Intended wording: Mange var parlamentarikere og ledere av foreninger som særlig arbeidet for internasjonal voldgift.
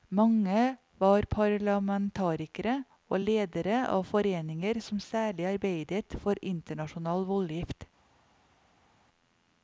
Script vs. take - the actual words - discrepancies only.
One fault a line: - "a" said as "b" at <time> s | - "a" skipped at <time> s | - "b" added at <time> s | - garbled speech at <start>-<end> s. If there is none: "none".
none